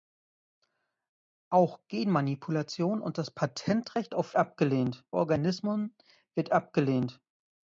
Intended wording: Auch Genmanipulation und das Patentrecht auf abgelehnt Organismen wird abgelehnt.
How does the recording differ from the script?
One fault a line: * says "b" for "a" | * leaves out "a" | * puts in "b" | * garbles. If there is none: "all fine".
all fine